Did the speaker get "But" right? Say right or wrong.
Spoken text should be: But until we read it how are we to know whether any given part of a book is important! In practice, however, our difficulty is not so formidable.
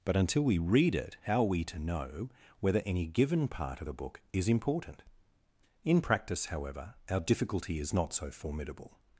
right